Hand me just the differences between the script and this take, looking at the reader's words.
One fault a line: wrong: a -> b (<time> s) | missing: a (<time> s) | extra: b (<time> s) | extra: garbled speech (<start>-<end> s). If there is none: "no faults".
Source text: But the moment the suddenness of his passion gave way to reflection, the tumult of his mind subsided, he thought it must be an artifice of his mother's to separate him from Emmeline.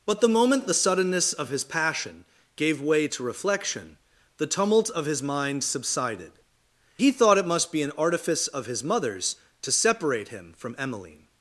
no faults